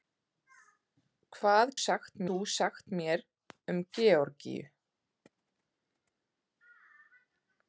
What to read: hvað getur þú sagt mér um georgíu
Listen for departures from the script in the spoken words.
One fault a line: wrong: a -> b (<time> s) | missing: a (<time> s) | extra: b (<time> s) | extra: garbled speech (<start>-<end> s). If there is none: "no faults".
wrong: getur -> sagt (1.9 s)